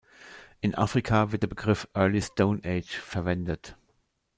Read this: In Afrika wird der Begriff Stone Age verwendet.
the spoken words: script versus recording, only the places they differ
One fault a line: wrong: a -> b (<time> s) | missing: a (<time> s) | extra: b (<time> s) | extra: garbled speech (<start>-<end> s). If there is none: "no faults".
extra: Early (1.9 s)